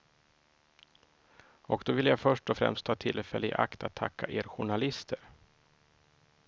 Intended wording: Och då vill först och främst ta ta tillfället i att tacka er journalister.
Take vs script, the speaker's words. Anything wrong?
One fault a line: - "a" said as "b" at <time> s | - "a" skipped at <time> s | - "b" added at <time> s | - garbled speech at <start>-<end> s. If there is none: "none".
- "jag" added at 2.0 s
- "ta" skipped at 2.9 s
- "akt" added at 3.5 s